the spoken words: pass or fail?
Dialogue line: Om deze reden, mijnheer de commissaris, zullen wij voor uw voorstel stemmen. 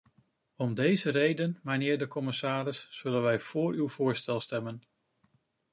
pass